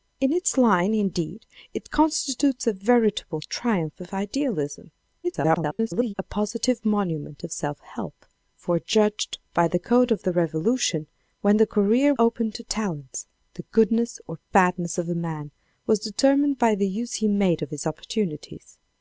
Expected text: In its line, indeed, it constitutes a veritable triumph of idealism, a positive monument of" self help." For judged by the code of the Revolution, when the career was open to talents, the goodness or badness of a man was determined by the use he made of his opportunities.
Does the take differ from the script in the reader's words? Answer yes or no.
yes